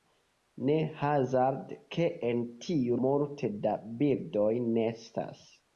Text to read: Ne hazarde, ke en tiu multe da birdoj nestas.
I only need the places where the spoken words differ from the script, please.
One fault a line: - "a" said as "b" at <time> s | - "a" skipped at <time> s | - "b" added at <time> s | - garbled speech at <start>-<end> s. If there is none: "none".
none